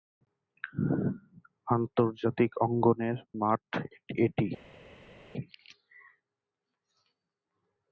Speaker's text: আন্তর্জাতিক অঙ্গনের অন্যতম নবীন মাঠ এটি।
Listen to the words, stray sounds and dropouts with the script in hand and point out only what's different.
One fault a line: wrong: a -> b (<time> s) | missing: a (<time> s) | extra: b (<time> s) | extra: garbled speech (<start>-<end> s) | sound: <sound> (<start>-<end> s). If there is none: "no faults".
missing: অন্যতম নবীন (3.2 s)